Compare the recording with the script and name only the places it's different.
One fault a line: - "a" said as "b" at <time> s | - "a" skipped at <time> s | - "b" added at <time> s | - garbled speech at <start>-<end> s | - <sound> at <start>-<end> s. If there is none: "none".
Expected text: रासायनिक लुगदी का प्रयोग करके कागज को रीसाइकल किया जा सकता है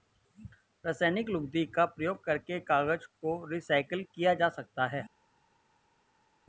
none